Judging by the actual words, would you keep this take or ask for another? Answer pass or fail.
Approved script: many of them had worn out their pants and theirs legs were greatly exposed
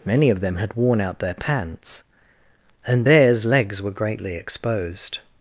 pass